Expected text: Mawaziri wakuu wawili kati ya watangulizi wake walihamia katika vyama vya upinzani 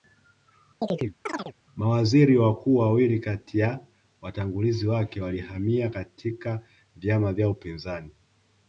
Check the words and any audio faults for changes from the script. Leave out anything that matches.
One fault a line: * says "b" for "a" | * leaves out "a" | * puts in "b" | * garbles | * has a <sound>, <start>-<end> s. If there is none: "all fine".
* has a chirp, 0.8-1.5 s